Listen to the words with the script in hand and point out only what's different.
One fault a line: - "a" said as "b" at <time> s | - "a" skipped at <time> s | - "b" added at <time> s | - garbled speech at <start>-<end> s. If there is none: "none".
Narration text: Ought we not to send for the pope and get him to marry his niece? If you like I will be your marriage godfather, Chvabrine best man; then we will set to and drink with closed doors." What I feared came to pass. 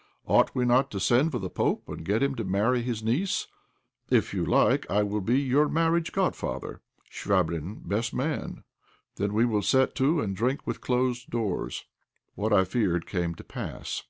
none